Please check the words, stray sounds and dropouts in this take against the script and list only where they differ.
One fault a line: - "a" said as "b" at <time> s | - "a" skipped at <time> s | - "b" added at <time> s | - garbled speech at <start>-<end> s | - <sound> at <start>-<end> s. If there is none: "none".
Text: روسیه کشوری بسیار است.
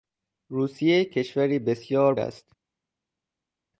none